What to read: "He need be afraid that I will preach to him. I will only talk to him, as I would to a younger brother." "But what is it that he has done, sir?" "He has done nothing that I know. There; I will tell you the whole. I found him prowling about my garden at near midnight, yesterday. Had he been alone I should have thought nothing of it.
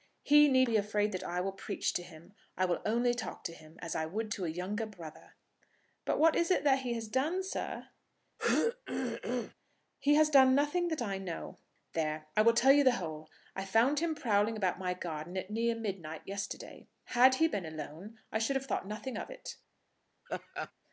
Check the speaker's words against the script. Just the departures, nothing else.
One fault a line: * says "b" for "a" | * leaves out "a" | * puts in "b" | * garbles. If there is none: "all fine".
all fine